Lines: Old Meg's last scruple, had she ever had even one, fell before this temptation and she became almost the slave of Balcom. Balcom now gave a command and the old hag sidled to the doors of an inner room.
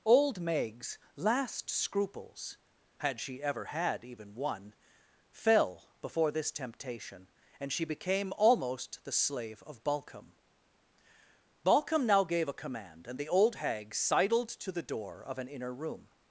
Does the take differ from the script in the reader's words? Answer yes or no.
yes